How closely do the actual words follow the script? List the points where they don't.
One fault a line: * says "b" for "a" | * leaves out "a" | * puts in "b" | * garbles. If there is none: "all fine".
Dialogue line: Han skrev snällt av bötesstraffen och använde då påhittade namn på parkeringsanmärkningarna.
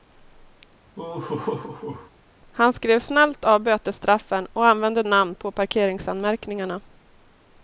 * leaves out "då påhittade"